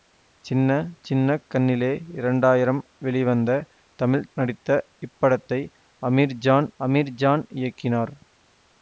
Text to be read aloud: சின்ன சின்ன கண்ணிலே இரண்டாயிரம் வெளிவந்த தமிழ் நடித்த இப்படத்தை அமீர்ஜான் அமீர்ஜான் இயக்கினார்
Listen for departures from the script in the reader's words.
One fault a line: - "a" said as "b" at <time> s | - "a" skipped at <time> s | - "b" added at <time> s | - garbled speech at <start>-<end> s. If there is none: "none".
none